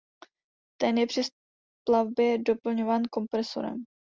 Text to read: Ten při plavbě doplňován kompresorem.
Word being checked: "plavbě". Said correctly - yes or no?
yes